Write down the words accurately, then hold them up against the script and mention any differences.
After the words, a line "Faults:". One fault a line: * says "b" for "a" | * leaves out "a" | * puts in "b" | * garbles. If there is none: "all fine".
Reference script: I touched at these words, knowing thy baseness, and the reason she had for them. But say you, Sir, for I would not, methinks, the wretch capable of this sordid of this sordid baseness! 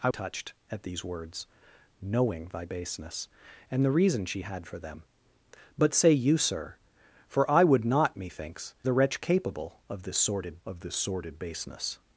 I touched at these words, knowing thy baseness, and the reason she had for them. But say you, Sir, for I would not, methinks, the wretch capable of this sordid of this sordid baseness!
Faults:
all fine